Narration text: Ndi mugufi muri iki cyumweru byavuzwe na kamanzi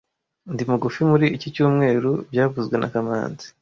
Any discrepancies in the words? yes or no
no